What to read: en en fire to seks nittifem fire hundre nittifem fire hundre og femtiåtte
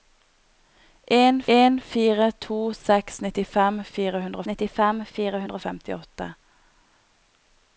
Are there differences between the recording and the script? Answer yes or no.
no